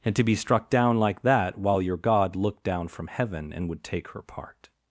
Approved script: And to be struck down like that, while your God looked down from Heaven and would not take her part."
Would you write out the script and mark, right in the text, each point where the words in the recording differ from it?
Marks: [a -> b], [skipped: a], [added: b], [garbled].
And to be struck down like that, while your God looked down from Heaven and would [skipped: not] take her part."